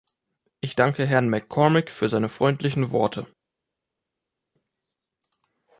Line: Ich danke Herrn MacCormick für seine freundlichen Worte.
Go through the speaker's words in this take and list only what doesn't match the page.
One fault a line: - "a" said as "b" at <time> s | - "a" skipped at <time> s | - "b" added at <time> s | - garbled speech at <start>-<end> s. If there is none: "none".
none